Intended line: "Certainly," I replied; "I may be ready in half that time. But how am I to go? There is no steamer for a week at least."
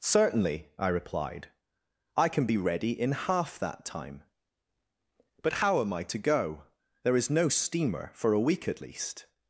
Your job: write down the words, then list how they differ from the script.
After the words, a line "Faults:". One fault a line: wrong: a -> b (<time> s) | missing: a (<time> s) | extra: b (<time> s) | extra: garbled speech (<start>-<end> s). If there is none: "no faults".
"Certainly," I replied; "I can be ready in half that time. But how am I to go? There is no steamer for a week at least."
Faults:
wrong: may -> can (2.3 s)